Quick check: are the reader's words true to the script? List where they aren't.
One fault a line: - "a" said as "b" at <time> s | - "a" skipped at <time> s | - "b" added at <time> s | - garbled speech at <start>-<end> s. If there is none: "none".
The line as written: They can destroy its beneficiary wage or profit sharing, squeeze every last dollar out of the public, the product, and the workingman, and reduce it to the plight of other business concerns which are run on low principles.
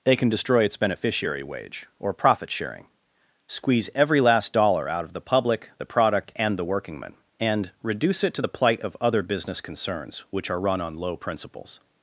none